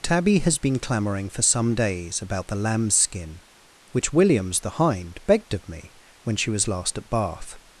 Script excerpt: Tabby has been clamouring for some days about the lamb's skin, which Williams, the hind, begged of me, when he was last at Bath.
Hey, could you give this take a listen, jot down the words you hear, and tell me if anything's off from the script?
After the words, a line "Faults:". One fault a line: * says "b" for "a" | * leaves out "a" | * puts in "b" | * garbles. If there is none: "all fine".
Tabby has been clamouring for some days about the lamb's skin, which Williams, the hind, begged of me, when she was last at Bath.
Faults:
* says "she" for "he"